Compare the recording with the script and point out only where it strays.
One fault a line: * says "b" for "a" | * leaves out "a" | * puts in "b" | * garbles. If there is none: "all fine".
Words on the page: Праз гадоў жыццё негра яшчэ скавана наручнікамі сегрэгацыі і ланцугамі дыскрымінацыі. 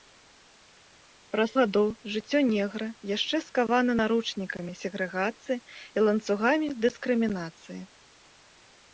all fine